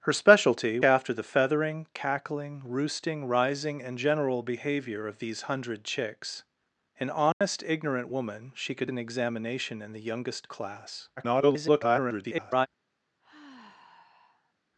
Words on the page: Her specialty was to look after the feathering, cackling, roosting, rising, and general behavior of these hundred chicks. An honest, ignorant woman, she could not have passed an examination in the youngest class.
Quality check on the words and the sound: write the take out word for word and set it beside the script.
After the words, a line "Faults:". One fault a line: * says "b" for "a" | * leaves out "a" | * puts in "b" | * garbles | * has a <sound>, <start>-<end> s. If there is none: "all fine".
Her specialty after the feathering, cackling, roosting, rising, and general behavior of these hundred chicks. An honest, ignorant woman, she could an examination in the youngest class. [garbled]
Faults:
* leaves out "was to look"
* has a dropout, 7.3-7.4 s
* leaves out "not have passed"
* garbles
* has a sigh, 13.2-14.5 s